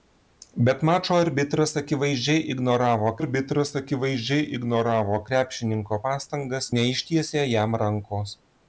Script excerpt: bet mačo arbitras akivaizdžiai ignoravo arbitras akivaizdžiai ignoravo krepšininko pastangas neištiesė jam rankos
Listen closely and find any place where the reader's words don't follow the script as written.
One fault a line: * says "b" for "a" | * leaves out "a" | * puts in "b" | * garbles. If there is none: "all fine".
all fine